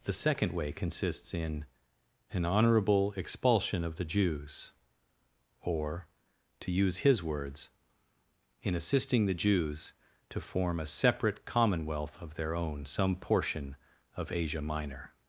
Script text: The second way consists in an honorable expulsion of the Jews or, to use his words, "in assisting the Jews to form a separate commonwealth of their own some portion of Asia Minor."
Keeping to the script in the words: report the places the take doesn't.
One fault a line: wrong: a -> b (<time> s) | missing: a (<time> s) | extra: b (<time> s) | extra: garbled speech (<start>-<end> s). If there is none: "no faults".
no faults